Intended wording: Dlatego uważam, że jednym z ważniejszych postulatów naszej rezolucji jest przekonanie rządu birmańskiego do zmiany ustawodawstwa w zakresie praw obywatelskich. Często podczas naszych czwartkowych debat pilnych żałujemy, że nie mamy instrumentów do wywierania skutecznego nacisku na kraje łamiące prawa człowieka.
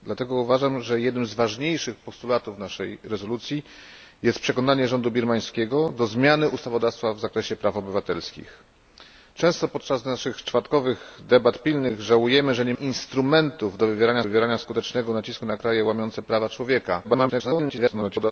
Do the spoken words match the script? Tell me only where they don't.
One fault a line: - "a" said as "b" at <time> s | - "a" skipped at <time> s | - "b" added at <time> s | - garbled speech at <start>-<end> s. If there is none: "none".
- "mamy" skipped at 12.7 s
- "wywierania" added at 14.2 s
- garbled speech at 17.0-18.3 s